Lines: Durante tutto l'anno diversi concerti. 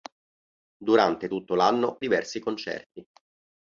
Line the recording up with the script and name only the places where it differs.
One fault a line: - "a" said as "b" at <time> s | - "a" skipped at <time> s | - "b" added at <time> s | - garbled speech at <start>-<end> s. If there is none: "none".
none